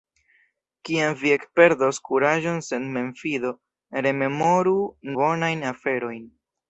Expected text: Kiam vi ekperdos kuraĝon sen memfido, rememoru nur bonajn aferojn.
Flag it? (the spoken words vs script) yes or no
yes